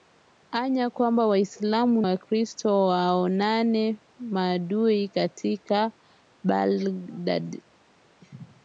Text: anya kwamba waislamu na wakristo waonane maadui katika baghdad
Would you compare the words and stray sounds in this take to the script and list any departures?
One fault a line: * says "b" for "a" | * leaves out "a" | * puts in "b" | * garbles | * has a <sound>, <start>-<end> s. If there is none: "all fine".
* leaves out "na"